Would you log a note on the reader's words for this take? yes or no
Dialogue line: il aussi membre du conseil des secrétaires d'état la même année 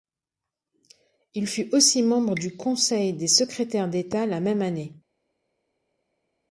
yes